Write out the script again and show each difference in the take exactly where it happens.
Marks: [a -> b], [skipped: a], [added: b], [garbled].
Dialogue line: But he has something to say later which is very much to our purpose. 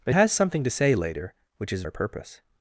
But [skipped: he] has something to say later which is [skipped: very much to] our purpose.